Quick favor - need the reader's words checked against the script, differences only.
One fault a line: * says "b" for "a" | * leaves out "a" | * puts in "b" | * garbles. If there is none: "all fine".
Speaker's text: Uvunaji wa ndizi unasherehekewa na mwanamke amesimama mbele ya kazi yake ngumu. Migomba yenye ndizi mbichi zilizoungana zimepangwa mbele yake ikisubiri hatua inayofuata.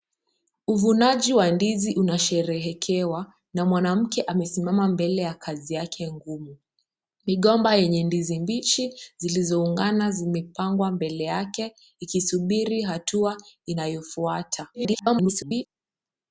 * garbles